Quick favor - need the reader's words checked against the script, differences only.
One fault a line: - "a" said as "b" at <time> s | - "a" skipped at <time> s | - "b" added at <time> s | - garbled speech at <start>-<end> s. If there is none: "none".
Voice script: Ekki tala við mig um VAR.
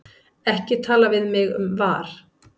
none